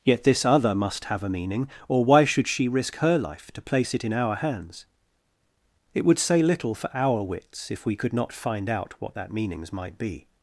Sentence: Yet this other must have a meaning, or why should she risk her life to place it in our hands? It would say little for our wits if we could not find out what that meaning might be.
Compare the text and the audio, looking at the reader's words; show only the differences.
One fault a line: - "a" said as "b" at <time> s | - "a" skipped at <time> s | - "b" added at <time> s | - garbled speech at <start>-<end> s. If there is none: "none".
- "meaning" said as "meanings" at 9.3 s